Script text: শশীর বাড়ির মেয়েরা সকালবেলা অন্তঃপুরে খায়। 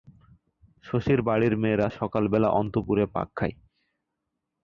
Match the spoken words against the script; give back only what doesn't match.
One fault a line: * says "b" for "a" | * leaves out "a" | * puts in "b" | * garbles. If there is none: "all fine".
* puts in "পাক"